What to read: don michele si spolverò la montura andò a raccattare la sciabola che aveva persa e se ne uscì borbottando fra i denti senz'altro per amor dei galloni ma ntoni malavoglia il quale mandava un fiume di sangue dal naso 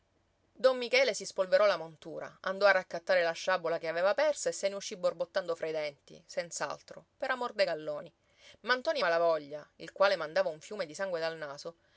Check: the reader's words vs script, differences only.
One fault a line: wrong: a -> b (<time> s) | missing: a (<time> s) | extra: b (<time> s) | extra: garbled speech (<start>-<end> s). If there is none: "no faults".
no faults